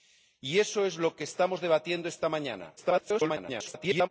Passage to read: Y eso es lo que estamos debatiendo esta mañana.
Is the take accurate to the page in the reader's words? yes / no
no